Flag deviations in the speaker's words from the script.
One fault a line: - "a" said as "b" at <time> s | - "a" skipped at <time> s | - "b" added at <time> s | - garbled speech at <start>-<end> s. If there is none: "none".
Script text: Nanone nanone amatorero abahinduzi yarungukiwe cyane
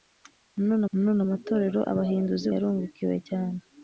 none